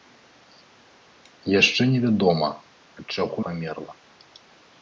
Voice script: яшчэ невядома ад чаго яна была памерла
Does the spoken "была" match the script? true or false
false